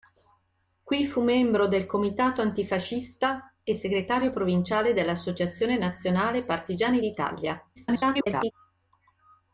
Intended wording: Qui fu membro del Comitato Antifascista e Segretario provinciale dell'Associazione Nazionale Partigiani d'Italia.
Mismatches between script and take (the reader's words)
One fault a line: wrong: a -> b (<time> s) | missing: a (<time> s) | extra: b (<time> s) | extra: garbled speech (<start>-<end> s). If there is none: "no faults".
extra: garbled speech (7.8-8.5 s)